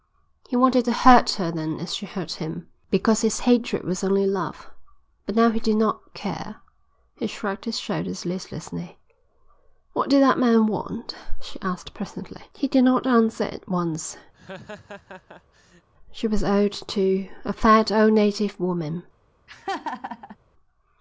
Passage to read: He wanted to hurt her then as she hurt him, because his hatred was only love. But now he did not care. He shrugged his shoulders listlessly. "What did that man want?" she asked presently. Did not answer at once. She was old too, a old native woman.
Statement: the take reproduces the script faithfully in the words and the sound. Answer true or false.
false